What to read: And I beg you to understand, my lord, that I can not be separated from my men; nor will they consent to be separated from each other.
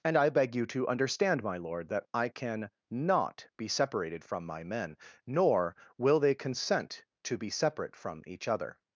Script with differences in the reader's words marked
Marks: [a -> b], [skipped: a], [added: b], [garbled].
And I beg you to understand, my lord, that I can not be separated from my men; nor will they consent to be [separated -> separate] from each other.